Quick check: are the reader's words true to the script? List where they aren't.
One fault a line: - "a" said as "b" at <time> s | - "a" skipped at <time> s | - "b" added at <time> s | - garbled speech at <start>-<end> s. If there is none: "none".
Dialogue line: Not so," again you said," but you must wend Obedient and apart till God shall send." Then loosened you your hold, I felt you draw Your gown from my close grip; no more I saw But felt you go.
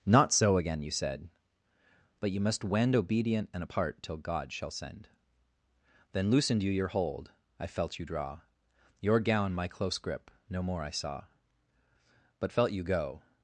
- "from" skipped at 9.5 s